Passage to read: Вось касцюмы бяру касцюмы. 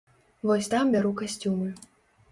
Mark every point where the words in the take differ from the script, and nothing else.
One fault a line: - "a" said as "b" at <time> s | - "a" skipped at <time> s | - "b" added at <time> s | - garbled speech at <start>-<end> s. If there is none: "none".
- "касцюмы" said as "там" at 0.7 s